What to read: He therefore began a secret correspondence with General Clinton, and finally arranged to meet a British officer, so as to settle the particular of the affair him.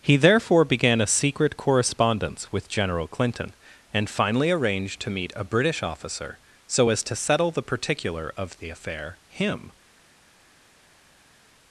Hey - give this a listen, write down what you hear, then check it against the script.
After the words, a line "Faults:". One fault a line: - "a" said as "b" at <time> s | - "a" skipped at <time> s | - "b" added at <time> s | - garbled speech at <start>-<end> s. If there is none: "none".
He therefore began a secret correspondence with General Clinton, and finally arranged to meet a British officer, so as to settle the particular of the affair him.
Faults:
none